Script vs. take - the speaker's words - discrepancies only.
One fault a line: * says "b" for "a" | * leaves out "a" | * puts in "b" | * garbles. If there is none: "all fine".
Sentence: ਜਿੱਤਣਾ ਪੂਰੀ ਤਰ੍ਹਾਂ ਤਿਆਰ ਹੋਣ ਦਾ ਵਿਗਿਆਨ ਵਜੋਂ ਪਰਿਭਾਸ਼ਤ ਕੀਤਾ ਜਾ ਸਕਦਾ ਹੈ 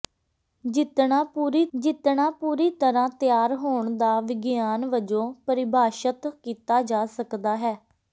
* puts in "ਜਿੱਤਣਾ ਪੂਰੀ"